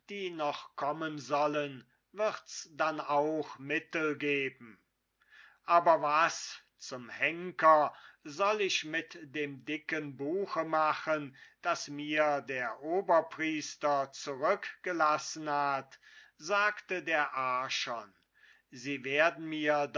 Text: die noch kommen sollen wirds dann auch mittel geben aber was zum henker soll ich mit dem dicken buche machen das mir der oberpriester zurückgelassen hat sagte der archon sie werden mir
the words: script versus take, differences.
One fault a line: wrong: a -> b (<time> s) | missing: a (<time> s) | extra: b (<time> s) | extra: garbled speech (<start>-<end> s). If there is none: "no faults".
no faults